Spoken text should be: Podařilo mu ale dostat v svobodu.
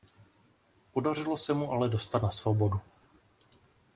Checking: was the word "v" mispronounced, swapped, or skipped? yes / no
yes